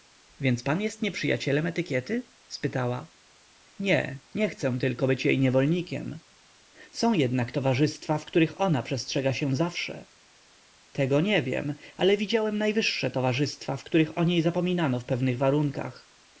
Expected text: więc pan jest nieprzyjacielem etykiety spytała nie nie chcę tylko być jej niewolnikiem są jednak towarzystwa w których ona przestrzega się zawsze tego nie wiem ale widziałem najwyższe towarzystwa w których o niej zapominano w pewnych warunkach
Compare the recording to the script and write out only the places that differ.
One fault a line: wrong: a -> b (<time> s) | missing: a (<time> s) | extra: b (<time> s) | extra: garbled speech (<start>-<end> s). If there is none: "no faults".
no faults